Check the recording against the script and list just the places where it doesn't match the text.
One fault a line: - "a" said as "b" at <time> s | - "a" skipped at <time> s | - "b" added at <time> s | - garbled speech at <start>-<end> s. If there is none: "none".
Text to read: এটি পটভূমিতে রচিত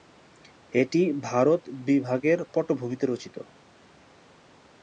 - "ভারত বিভাগের" added at 1.3 s